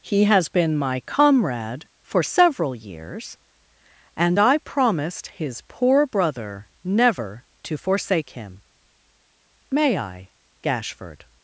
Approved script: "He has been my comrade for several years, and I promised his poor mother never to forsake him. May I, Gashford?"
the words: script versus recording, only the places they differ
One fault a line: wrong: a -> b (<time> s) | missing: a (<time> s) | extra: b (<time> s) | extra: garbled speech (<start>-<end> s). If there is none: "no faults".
wrong: mother -> brother (6.1 s)